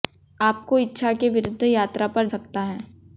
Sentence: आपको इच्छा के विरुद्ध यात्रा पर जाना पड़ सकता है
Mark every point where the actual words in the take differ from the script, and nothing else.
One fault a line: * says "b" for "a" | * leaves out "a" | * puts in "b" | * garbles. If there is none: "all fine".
* leaves out "जाना पड़"